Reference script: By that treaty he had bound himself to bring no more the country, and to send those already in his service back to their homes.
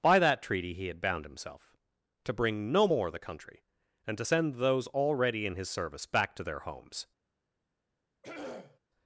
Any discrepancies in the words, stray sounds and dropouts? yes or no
yes